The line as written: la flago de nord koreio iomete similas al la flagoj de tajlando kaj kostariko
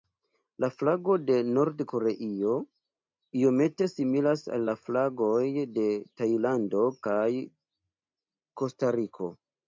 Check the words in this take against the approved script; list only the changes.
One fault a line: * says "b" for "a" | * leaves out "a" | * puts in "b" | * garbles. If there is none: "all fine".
all fine